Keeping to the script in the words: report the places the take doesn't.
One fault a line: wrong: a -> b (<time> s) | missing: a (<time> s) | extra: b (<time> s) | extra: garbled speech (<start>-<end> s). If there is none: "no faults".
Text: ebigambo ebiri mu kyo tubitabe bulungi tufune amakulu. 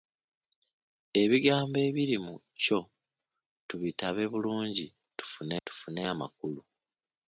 extra: tufune (5.6 s)